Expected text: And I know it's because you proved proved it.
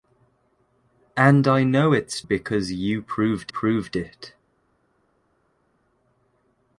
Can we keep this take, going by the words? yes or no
yes